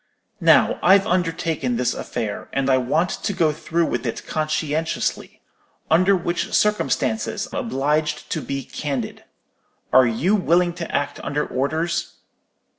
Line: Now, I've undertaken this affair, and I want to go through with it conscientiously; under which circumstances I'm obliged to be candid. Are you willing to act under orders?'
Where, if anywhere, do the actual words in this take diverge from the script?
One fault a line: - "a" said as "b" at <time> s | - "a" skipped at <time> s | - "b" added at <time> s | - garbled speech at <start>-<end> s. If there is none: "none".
- "I'm" skipped at 7.5 s